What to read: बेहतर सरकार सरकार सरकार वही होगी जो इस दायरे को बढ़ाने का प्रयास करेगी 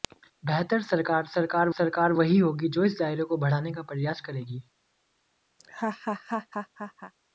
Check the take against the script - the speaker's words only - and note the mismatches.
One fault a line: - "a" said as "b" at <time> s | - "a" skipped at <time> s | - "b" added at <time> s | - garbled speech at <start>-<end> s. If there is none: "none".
none